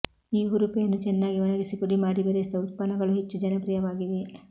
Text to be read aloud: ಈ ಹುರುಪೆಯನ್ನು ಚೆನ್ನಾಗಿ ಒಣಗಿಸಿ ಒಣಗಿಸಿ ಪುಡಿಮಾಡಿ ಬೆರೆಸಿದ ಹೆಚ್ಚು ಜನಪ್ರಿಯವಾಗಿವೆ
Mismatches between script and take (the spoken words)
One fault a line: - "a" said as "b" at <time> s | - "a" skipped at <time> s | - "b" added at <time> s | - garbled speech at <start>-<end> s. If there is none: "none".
- "ಒಣಗಿಸಿ" skipped at 1.8 s
- "ಉತ್ಪನ್ನಗಳು" added at 2.6 s